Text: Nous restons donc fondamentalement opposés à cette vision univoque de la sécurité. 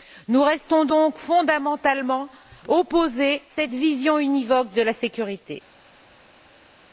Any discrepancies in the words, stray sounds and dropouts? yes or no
yes